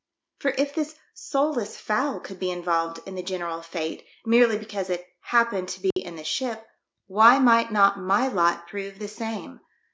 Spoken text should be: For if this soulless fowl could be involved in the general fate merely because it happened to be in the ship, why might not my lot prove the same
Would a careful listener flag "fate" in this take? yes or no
no